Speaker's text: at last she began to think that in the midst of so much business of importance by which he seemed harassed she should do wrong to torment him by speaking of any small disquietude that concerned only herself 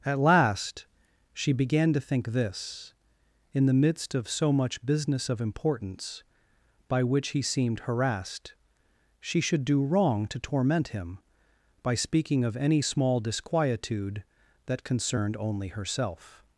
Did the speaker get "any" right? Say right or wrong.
right